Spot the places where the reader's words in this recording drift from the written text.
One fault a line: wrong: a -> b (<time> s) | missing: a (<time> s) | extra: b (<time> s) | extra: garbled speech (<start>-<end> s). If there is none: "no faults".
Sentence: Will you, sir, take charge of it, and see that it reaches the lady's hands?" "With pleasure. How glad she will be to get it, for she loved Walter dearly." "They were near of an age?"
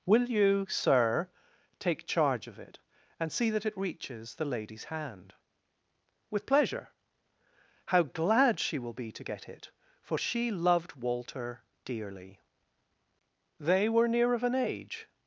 wrong: hands -> hand (4.8 s)